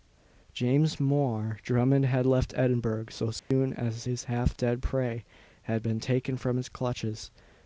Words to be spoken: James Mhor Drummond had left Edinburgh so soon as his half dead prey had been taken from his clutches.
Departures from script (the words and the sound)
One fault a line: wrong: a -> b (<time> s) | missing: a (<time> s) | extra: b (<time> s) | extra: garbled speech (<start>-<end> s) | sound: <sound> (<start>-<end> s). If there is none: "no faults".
sound: dropout (3.4-3.5 s)